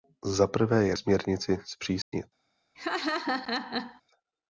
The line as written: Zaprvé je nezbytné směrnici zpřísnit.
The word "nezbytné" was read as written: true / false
false